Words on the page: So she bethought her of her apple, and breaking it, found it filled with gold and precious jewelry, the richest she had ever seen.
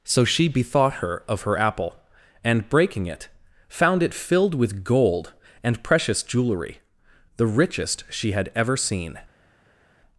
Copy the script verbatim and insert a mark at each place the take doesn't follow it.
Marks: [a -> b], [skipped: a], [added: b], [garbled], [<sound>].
So she bethought her of her apple, and breaking it, found it filled with gold and precious jewelry, the richest she had ever seen.